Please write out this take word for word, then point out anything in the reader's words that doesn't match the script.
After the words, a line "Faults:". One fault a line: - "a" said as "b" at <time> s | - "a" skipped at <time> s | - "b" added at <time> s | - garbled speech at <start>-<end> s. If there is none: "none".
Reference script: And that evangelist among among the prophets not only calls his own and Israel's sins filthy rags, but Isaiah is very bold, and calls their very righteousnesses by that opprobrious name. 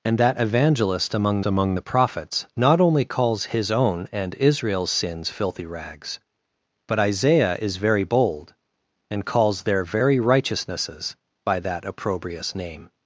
And that evangelist among among the prophets not only calls his own and Israel's sins filthy rags, but Isaiah is very bold, and calls their very righteousnesses by that opprobrious name.
Faults:
none